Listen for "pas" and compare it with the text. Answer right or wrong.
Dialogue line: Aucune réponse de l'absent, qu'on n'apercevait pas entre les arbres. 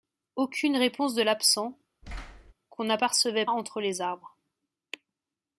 wrong